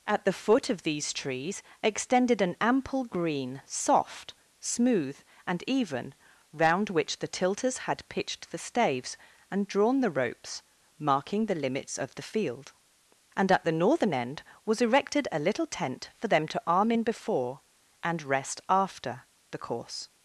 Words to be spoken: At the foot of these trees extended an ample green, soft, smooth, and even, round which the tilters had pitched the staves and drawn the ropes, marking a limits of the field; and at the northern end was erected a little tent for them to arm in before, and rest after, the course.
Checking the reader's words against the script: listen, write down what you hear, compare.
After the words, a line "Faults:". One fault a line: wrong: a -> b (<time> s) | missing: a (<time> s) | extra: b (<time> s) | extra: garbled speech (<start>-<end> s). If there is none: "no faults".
At the foot of these trees extended an ample green, soft, smooth, and even, round which the tilters had pitched the staves and drawn the ropes, marking the limits of the field; and at the northern end was erected a little tent for them to arm in before, and rest after, the course.
Faults:
wrong: a -> the (11.4 s)